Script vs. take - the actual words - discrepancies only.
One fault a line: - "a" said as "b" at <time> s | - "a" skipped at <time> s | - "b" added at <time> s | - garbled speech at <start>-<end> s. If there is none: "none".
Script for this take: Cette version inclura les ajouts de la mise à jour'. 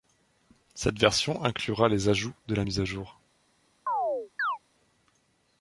none